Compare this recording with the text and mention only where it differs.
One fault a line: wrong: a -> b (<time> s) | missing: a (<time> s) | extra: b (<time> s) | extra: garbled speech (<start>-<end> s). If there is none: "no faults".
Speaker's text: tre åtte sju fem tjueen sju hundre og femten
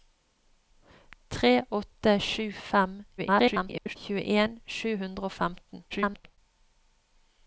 extra: garbled speech (3.2-4.0 s)
extra: garbled speech (5.9-6.4 s)